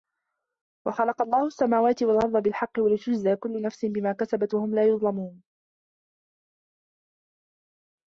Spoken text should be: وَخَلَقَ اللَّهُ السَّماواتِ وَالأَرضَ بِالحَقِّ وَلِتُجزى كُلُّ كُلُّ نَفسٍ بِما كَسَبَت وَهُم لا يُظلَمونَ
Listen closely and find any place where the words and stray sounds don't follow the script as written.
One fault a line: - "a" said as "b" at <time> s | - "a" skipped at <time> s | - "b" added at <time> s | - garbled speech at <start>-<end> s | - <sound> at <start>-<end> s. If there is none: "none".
- "كُلُّ" skipped at 3.6 s